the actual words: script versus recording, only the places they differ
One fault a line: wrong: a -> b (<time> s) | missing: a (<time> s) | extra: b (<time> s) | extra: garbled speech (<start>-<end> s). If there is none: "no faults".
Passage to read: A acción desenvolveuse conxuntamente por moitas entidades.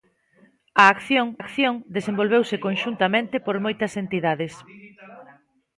extra: acción (1.4 s)